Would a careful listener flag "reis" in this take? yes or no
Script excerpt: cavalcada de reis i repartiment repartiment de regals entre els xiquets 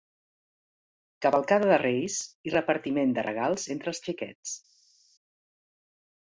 no